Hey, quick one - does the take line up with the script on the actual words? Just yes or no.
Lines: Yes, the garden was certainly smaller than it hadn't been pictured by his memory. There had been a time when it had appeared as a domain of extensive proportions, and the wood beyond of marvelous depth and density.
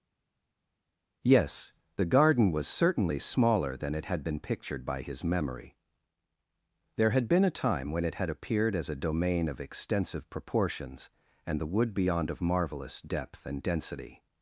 no